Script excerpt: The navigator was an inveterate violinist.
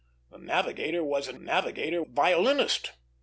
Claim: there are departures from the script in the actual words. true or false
true